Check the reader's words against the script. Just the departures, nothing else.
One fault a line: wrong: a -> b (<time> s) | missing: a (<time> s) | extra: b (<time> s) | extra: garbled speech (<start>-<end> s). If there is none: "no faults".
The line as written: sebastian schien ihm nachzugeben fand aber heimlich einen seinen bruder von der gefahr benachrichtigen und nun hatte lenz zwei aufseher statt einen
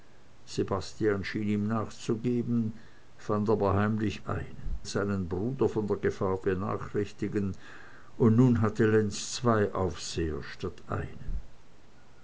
no faults